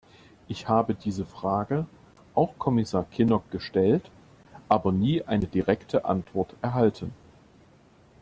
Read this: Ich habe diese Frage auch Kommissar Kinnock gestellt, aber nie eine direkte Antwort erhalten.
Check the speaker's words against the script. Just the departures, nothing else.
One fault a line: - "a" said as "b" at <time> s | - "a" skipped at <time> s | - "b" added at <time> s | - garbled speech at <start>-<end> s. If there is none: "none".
none